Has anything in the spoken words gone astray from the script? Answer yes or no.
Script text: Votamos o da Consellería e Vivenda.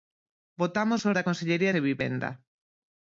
no